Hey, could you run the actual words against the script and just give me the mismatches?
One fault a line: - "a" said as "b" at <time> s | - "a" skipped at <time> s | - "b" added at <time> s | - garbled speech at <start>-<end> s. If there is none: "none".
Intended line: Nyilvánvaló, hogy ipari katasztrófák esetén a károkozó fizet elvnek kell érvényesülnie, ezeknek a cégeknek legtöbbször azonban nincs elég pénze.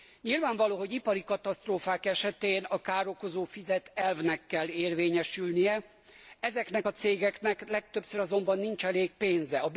none